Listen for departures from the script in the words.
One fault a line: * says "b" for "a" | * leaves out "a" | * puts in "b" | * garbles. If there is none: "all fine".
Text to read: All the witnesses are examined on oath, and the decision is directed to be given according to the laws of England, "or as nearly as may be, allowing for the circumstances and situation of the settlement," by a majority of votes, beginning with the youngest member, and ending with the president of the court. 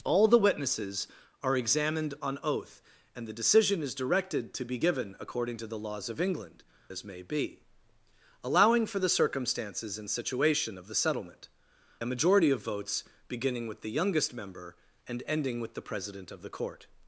* leaves out "or"
* leaves out "nearly as"
* leaves out "by"